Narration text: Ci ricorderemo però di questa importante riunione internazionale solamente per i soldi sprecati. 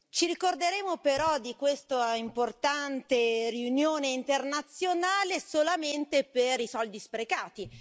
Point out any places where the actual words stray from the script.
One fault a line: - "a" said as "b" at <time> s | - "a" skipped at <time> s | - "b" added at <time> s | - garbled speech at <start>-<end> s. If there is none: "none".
none